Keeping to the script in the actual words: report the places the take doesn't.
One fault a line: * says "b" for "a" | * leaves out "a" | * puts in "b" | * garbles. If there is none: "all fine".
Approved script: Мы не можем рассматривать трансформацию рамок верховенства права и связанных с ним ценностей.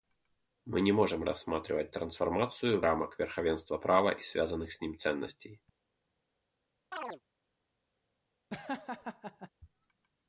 all fine